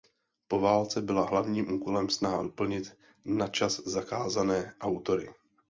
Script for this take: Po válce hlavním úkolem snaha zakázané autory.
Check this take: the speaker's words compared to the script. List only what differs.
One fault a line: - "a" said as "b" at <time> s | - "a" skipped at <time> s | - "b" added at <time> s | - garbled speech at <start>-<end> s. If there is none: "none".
- "byla" added at 1.0 s
- "doplnit načas" added at 2.4 s